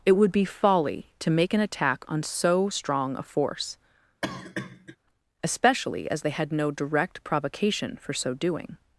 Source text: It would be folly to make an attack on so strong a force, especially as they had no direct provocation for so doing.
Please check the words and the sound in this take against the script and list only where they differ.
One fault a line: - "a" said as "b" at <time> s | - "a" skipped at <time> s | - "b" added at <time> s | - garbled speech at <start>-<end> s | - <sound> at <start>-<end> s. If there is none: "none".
- cough at 4.2-5.0 s